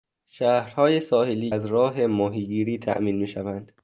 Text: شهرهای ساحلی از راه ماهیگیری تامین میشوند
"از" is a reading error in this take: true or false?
false